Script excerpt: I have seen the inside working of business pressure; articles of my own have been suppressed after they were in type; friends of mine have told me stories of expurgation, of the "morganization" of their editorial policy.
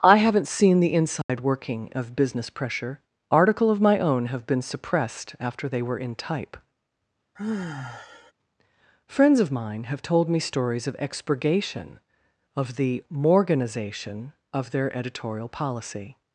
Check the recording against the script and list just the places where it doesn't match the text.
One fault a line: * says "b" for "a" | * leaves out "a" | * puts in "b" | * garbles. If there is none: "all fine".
* says "haven't" for "have"
* says "article" for "articles"